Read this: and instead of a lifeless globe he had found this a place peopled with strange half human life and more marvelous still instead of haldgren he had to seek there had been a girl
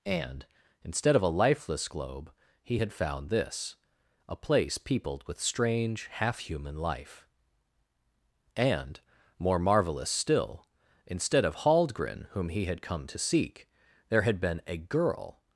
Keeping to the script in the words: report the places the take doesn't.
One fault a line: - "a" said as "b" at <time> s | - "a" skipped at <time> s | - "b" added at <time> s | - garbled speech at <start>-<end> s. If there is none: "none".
- "whom" added at 12.3 s
- "come" added at 12.8 s